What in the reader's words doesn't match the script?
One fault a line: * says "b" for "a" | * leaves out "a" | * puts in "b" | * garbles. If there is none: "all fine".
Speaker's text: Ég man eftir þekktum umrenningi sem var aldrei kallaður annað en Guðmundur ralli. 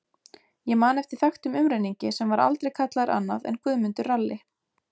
all fine